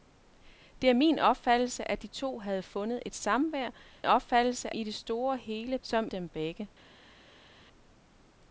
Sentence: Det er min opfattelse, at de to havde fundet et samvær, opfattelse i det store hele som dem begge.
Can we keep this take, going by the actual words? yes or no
yes